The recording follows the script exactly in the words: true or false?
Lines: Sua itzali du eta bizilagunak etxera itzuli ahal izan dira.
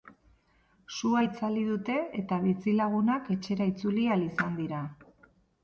false